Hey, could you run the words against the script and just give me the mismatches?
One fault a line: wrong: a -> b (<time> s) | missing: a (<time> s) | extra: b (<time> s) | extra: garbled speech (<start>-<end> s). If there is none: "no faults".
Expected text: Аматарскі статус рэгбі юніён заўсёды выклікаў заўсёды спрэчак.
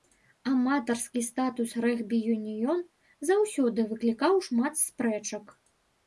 wrong: заўсёды -> шмат (4.5 s)